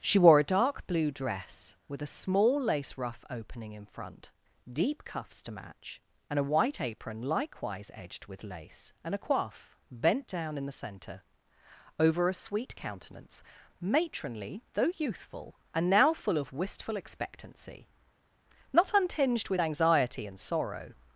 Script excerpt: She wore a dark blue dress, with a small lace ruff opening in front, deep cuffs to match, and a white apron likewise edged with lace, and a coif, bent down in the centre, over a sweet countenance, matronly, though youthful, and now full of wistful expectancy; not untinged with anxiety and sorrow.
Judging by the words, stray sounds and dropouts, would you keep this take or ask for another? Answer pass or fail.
pass